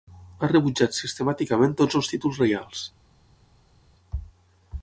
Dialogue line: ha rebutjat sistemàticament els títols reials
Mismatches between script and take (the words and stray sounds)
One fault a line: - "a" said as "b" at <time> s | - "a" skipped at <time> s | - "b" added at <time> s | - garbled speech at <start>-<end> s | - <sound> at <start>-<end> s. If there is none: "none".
- "tots" added at 1.8 s